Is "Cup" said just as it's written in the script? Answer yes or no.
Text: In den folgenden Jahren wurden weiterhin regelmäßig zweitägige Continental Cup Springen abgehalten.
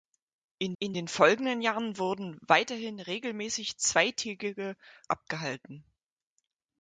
no